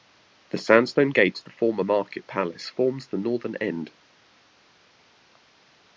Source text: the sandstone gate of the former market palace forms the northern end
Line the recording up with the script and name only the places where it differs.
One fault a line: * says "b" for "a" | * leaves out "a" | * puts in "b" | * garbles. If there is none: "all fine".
all fine